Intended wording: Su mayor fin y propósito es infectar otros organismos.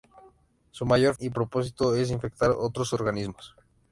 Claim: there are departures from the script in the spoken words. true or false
true